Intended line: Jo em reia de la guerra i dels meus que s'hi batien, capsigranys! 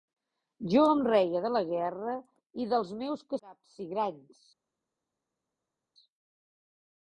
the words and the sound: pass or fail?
fail